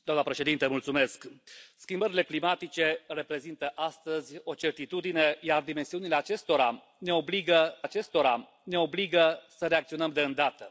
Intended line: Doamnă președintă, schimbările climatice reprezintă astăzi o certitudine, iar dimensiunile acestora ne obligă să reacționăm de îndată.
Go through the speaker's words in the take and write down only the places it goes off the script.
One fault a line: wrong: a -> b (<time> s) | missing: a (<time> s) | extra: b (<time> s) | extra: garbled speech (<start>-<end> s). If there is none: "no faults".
extra: acestora ne obligă (7.8 s)